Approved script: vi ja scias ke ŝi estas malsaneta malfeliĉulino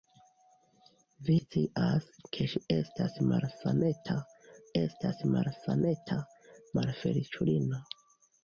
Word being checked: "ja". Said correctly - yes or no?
no